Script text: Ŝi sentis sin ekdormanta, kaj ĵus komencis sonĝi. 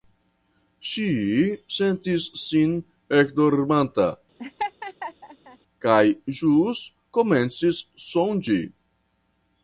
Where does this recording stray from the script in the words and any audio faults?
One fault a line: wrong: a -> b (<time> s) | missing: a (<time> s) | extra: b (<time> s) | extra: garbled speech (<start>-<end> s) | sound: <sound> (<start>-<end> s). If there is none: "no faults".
sound: laugh (4.4-5.6 s)